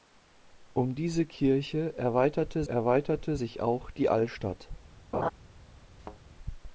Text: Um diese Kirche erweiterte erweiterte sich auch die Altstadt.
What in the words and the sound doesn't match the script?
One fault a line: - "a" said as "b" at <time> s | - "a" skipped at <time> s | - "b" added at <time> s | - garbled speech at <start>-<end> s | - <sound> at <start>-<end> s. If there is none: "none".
- laugh at 5.1-5.3 s
- thud at 6.0-6.2 s